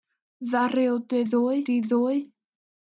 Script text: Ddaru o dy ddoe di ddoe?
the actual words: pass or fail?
pass